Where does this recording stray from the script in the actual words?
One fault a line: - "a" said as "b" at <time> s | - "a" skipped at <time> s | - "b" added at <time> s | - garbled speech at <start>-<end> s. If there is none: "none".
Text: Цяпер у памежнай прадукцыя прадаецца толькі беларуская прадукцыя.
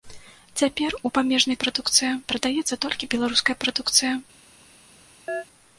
none